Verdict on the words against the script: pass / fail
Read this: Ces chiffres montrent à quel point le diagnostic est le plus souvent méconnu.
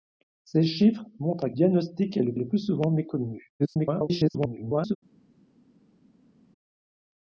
fail